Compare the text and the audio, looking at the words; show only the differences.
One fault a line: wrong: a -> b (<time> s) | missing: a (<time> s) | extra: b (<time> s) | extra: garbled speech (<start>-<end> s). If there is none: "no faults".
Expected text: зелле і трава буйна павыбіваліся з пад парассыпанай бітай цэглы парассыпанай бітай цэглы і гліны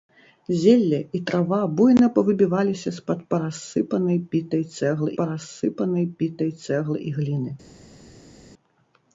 no faults